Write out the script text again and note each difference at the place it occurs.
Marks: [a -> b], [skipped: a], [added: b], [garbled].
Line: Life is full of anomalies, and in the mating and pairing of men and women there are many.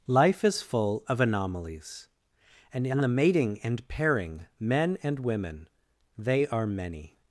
Life is full of anomalies, and in the mating and pairing [skipped: of] men and women [there -> they] are many.